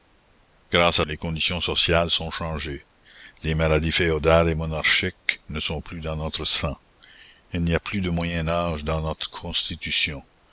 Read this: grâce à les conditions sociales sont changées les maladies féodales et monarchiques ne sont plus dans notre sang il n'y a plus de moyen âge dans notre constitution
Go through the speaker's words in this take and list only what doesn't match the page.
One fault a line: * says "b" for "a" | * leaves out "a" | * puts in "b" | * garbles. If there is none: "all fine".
all fine